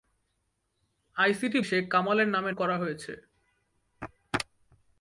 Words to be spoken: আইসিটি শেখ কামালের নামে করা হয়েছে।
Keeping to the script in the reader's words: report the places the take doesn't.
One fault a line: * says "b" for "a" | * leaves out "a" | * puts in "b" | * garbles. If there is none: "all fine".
all fine